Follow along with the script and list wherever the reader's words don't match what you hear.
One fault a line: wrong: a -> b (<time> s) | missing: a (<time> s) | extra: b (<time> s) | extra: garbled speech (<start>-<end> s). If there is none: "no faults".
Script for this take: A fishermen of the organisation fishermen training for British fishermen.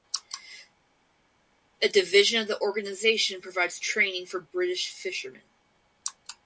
wrong: fishermen -> division (1.9 s)
wrong: fishermen -> provides (3.4 s)